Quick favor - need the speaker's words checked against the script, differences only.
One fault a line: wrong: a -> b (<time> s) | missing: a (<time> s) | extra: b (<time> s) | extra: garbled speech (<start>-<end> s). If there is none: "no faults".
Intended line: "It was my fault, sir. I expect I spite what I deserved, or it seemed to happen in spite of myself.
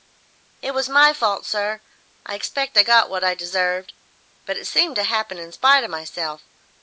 wrong: spite -> got (2.8 s)
wrong: or -> but (4.5 s)